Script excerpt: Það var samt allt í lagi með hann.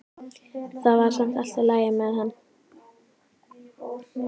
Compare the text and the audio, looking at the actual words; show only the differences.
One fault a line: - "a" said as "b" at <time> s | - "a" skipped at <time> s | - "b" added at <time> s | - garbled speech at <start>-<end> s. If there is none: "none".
none